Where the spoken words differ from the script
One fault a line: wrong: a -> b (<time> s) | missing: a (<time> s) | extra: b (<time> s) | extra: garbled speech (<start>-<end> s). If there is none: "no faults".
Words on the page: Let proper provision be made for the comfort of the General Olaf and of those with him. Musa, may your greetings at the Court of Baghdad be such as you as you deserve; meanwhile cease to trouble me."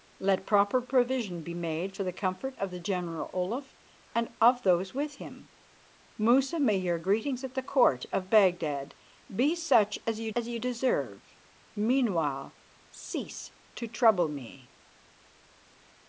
no faults